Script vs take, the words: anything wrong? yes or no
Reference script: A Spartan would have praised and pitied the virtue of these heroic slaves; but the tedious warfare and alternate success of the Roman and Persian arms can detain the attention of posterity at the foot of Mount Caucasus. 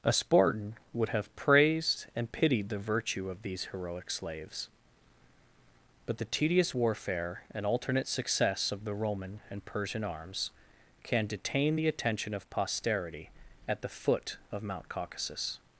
no